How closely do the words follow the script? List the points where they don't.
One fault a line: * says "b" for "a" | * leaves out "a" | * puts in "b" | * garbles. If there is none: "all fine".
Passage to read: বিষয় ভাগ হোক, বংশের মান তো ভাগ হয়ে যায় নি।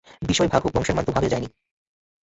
all fine